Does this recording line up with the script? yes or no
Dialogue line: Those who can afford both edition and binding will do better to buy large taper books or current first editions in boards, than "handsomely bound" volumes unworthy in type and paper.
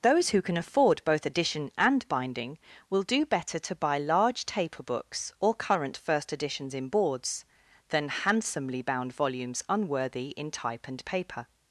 yes